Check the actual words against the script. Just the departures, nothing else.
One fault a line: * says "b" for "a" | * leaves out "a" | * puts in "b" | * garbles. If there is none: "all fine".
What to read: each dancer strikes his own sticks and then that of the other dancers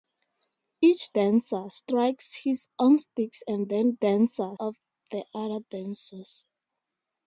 * says "dancer" for "that"